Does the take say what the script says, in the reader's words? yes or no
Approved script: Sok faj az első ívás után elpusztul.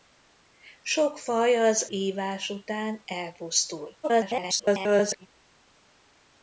no